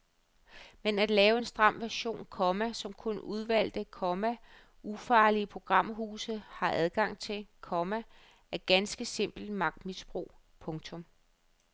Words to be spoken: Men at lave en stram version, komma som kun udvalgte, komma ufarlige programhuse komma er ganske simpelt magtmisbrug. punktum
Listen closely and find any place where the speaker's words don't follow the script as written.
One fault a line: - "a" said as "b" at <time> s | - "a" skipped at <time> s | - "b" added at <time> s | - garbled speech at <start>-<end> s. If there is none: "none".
- "har adgang til" added at 6.5 s